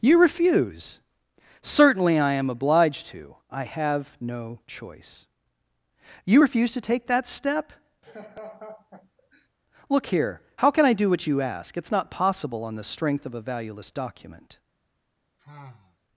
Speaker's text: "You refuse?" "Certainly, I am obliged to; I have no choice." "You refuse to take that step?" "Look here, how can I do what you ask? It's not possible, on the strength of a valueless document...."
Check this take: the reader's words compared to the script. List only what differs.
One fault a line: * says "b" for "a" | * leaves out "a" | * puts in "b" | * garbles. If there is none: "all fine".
all fine